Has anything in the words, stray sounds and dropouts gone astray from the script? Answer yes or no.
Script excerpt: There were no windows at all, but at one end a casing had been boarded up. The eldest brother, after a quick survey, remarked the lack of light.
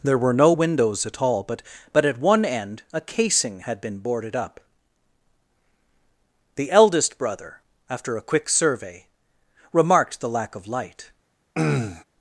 yes